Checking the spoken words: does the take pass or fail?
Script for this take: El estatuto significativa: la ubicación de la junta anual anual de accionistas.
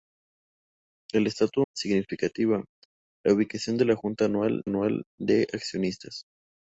pass